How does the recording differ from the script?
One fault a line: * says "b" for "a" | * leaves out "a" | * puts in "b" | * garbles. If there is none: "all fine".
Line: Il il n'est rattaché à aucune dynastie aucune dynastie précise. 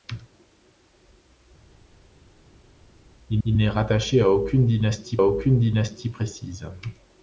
all fine